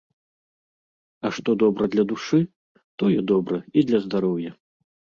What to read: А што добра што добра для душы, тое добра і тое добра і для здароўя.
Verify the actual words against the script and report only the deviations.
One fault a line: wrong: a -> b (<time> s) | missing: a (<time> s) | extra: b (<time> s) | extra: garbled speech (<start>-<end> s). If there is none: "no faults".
missing: што добра (1.9 s)
missing: тое добра і (3.9 s)